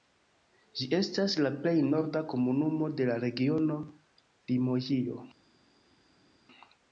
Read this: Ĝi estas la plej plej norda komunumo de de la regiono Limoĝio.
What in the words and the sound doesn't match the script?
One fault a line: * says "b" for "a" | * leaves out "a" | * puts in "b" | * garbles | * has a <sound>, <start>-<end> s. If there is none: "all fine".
* leaves out "plej"
* leaves out "de"